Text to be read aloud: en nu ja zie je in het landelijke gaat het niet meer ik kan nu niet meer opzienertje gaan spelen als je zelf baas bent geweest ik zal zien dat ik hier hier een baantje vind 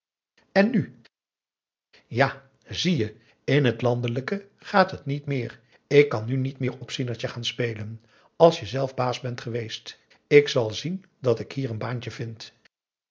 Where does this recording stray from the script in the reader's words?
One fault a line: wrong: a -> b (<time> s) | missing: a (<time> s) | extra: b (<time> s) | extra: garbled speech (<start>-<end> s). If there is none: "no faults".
missing: hier (11.7 s)